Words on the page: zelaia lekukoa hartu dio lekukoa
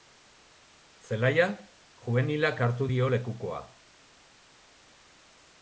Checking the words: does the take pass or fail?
fail